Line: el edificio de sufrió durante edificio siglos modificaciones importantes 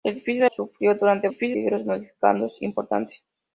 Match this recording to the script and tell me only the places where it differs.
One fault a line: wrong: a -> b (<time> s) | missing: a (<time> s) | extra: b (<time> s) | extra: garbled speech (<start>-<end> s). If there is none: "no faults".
no faults